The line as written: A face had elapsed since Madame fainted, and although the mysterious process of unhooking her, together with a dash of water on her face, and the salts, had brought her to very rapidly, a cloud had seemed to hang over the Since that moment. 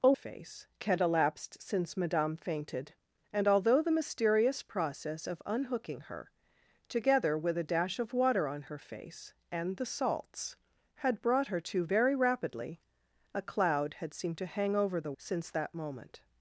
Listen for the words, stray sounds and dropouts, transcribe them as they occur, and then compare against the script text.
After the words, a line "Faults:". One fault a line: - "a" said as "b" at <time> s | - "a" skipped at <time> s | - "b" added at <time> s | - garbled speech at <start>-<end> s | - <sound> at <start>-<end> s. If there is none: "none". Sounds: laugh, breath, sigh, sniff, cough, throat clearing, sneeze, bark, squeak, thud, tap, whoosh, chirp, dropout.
A face had elapsed since Madame fainted, and although the mysterious process of unhooking her, together with a dash of water on her face, and the salts, had brought her to very rapidly, a cloud had seemed to hang over the Since that moment.
Faults:
none